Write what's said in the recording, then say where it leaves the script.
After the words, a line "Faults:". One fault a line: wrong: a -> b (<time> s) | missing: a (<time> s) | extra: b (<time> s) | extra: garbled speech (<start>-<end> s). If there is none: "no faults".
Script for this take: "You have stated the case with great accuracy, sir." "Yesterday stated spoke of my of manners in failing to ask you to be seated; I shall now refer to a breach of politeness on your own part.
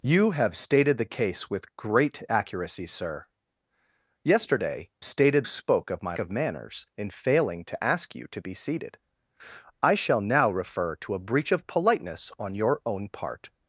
"You have stated the case with great accuracy, sir." "Yesterday stated spoke of my of manners in failing to ask you to be seated; I shall now refer to a breach of politeness on your own part.
Faults:
no faults